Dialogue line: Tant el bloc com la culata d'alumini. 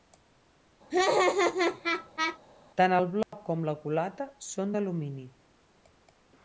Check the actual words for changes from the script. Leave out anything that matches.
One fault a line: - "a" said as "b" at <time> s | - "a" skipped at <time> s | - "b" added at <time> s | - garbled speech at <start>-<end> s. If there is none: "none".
- "són" added at 4.5 s